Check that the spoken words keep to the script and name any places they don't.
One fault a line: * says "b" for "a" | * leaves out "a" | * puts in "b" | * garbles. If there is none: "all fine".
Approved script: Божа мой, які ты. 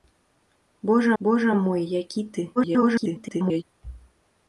* puts in "божа"
* garbles